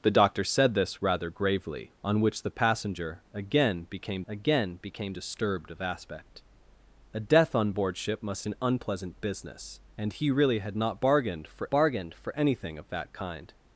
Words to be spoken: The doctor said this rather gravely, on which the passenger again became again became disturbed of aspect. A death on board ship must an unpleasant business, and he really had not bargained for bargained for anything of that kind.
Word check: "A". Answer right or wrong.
right